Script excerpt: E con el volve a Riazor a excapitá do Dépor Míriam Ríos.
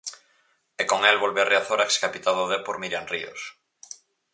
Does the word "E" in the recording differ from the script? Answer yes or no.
no